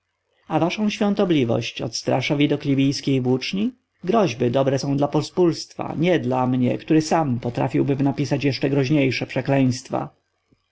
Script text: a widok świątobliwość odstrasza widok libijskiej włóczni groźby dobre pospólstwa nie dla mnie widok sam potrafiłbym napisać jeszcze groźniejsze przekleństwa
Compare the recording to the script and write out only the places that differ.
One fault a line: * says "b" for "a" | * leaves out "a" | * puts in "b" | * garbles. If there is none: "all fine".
* says "waszą" for "widok"
* puts in "są dla"
* says "który" for "widok"